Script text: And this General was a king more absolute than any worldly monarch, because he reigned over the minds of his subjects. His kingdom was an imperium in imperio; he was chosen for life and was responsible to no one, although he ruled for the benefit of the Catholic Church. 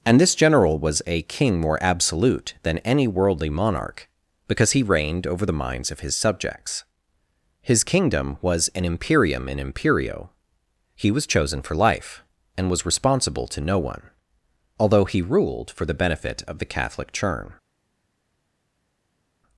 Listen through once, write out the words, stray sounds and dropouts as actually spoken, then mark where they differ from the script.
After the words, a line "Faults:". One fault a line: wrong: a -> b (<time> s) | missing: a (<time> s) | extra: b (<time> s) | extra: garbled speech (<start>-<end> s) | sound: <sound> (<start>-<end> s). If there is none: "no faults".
And this General was a king more absolute than any worldly monarch, because he reigned over the minds of his subjects. His kingdom was an imperium in imperio; he was chosen for life and was responsible to no one, although he ruled for the benefit of the Catholic Churn.
Faults:
wrong: Church -> Churn (17.1 s)